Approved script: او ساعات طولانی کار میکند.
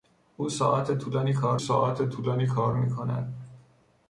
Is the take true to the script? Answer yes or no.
no